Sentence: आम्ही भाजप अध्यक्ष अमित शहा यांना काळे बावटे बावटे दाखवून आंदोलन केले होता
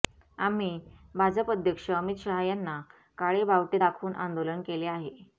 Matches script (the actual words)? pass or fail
fail